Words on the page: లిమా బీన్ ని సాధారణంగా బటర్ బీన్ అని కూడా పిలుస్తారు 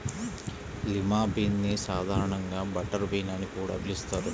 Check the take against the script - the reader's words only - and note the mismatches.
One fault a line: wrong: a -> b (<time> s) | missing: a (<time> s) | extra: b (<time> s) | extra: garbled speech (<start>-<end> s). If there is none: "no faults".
no faults